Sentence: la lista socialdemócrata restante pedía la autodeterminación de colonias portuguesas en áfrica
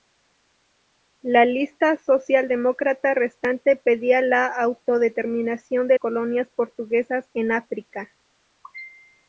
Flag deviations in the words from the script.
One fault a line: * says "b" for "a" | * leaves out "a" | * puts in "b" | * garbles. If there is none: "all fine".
all fine